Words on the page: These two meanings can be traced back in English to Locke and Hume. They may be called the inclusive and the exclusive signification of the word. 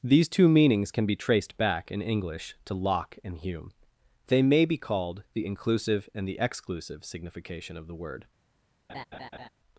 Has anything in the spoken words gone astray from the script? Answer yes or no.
no